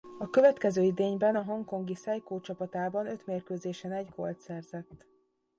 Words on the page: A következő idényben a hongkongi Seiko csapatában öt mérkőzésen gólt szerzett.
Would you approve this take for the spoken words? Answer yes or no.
no